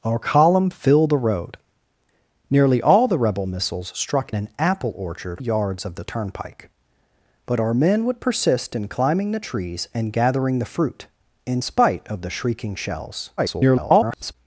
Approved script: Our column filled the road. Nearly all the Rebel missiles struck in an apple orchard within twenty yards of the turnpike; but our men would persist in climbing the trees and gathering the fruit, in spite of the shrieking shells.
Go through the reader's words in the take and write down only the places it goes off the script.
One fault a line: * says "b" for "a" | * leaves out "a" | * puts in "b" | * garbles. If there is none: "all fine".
* leaves out "in"
* leaves out "within twenty"
* garbles